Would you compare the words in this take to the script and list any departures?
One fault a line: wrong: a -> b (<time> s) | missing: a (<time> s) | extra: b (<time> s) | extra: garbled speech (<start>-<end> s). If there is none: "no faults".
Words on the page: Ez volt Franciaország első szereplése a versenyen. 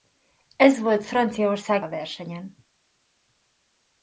missing: első szereplése (1.9 s)